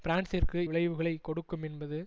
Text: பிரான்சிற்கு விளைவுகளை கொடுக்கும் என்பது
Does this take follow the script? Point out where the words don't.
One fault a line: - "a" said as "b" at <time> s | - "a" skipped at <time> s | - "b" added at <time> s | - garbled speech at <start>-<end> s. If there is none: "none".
none